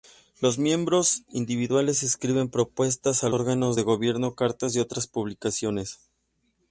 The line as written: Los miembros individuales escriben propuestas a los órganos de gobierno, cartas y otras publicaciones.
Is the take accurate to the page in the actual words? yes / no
no